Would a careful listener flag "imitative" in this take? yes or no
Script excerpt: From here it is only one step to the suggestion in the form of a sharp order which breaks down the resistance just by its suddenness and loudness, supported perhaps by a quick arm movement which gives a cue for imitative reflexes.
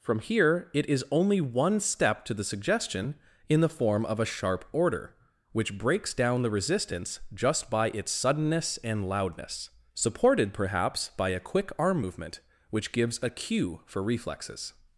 yes